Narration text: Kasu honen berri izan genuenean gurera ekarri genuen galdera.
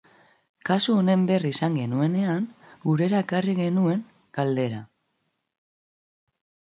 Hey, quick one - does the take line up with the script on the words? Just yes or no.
yes